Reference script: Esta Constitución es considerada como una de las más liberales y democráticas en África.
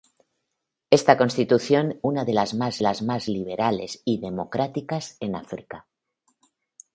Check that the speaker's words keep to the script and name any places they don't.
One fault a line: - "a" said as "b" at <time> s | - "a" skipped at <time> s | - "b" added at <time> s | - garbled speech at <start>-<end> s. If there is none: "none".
- "es considerada como una de" said as "una de las más" at 2.0 s